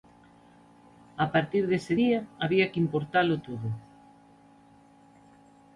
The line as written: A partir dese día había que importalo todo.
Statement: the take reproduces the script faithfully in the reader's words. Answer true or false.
true